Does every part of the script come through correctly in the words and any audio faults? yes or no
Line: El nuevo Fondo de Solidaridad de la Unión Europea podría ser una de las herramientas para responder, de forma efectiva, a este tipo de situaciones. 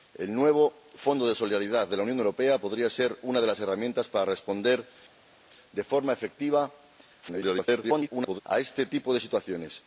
no